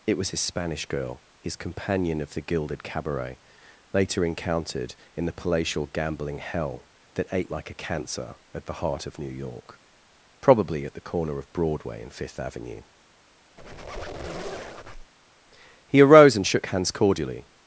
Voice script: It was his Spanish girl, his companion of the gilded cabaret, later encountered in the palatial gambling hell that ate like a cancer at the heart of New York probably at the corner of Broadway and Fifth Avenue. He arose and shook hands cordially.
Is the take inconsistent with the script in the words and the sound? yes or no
yes